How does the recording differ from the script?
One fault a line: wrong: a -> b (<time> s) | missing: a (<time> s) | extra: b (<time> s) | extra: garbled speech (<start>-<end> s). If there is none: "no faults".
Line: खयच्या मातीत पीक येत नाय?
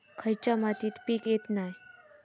no faults